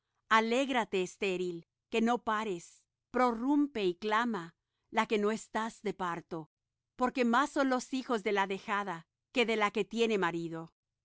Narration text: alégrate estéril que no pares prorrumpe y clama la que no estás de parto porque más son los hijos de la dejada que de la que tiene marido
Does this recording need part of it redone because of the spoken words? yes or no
no